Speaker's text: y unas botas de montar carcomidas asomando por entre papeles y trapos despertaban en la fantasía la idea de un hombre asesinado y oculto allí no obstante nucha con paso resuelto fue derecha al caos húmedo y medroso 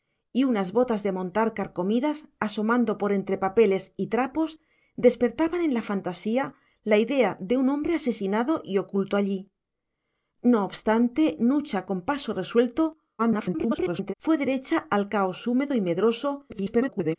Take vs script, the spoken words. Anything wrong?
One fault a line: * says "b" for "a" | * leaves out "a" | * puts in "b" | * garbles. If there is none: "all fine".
* garbles
* garbles